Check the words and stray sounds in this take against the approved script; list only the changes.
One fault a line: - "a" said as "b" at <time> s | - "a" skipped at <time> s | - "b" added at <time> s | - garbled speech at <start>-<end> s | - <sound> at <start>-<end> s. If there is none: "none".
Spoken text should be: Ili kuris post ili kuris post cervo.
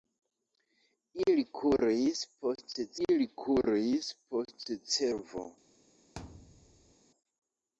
- thud at 6.2-6.9 s